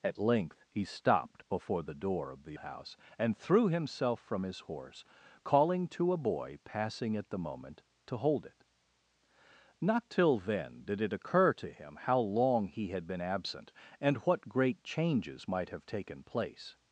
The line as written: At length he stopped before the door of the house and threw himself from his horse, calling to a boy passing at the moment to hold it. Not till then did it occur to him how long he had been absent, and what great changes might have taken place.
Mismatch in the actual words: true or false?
false